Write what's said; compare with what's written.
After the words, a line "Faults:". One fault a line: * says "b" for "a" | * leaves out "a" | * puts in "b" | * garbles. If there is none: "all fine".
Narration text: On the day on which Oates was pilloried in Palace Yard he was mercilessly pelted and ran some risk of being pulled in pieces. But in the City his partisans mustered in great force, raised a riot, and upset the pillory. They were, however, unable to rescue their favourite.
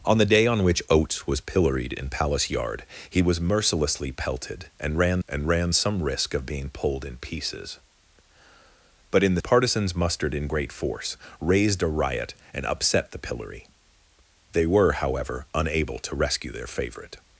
On the day on which Oates was pilloried in Palace Yard he was mercilessly pelted and ran and ran some risk of being pulled in pieces. But in the Partisans mustered in great force, raised a riot, and upset the pillory. They were, however, unable to rescue their favourite.
Faults:
* puts in "and ran"
* leaves out "City his"